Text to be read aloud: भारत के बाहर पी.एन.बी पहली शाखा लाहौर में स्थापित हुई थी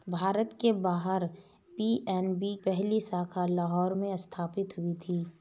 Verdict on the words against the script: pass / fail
pass